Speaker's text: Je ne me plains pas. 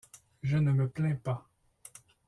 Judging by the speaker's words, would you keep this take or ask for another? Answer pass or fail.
pass